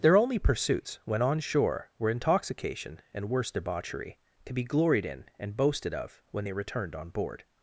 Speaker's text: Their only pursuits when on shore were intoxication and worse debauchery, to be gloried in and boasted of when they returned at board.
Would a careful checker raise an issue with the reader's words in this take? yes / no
yes